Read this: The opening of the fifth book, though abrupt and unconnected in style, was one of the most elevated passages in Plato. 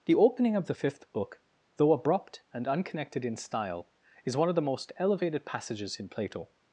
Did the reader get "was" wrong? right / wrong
wrong